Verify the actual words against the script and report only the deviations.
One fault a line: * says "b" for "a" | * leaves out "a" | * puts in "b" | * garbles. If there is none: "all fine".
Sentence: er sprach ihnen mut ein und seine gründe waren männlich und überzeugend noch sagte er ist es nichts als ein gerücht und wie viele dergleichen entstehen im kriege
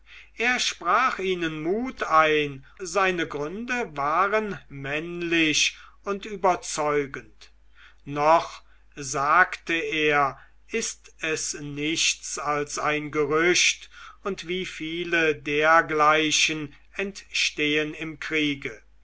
* leaves out "und"